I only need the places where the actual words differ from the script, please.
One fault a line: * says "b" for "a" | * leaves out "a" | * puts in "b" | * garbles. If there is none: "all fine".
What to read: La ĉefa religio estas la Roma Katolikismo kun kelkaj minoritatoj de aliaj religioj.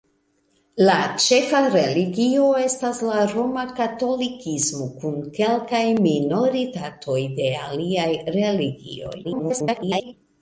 * garbles